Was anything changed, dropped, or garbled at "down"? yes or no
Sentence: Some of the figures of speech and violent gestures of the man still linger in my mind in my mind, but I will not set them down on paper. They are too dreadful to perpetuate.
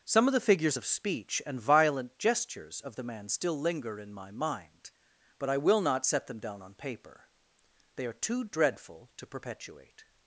no